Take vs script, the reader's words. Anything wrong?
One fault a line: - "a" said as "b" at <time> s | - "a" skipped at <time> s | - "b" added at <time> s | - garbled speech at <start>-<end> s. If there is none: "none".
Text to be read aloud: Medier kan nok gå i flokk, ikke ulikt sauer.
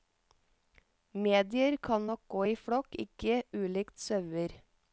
none